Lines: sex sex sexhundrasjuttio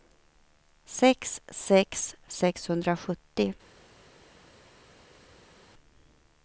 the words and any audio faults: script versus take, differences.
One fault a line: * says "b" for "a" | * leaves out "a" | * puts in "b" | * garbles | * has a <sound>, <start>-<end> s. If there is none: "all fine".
all fine